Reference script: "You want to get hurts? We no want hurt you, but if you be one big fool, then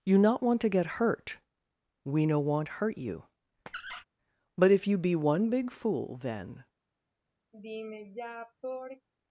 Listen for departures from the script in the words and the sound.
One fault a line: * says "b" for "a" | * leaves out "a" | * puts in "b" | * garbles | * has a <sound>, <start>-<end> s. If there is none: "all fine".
* puts in "not"
* says "hurt" for "hurts"
* has a squeak, 3.7-4.0 s
* has a sigh, 7.5-9.1 s